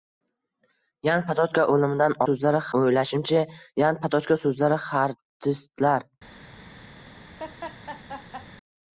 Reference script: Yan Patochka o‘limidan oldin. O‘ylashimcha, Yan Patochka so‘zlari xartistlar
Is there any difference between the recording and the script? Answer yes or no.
yes